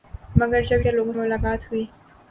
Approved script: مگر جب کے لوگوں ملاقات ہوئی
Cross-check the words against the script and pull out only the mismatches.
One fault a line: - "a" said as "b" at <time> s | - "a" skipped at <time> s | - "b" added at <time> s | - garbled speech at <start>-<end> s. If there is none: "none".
none